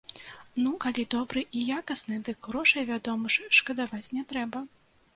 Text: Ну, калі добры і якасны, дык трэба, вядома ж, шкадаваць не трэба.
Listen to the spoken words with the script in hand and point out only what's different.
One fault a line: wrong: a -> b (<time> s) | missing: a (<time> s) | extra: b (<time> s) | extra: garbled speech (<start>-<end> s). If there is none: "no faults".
wrong: трэба -> грошай (2.5 s)